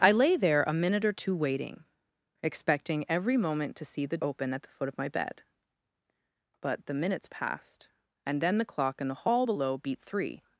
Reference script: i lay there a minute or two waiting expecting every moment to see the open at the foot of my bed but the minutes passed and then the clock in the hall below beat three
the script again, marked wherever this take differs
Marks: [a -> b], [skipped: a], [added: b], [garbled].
i lay there a minute or two waiting expecting every moment to see the open at the foot of my bed but the minutes passed and then the clock in the hall below beat three